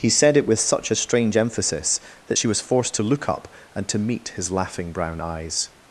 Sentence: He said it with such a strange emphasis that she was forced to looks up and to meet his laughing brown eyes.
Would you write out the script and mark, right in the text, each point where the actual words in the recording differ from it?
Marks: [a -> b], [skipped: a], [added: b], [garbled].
He said it with such a strange emphasis that she was forced to [looks -> look] up and to meet his laughing brown eyes.